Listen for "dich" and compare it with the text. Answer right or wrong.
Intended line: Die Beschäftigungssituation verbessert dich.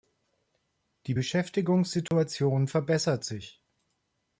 wrong